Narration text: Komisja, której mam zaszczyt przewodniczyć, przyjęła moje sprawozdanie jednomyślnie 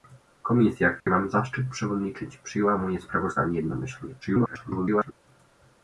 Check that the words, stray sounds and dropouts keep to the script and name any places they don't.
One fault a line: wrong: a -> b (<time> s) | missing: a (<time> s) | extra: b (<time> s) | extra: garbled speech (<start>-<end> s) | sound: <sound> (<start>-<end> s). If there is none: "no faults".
sound: dropout (1.0-1.1 s)
extra: garbled speech (4.2-5.1 s)